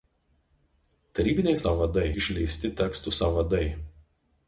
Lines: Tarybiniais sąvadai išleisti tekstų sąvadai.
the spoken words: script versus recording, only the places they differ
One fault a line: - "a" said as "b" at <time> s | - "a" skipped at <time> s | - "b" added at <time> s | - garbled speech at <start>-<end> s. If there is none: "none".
none